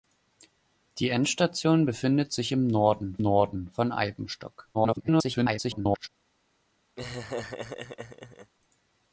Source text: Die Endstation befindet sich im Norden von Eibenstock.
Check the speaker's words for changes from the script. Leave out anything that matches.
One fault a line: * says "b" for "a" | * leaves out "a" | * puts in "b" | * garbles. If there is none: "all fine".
* puts in "Norden"
* garbles